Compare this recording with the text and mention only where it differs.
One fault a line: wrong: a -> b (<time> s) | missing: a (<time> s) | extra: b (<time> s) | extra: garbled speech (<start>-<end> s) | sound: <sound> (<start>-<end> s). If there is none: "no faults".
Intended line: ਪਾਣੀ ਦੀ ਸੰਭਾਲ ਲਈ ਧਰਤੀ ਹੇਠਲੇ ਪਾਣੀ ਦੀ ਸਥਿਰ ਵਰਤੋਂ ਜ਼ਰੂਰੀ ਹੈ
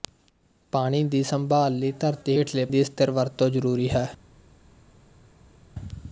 missing: ਪਾਣੀ (2.6 s)